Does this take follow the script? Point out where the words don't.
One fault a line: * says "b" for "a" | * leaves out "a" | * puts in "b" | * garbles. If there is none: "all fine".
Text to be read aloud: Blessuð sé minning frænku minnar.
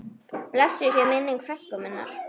all fine